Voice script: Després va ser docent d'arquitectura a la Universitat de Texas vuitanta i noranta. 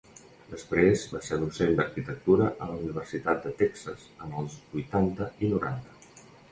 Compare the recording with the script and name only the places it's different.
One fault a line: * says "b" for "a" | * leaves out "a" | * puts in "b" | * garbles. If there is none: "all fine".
* puts in "en els"